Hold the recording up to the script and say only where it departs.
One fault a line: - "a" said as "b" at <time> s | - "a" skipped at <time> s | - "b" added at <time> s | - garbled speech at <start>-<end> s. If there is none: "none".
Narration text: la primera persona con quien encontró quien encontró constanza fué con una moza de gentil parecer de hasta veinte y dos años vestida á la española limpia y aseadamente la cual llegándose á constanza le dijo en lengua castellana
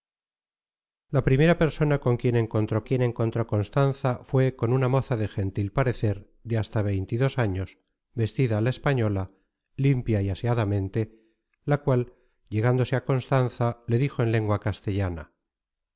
none